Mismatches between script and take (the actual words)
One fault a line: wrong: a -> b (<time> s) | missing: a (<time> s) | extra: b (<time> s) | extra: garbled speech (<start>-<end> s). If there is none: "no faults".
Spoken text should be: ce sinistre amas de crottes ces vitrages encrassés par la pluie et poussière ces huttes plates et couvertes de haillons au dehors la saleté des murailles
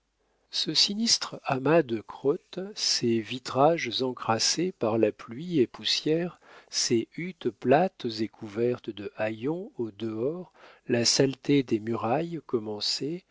no faults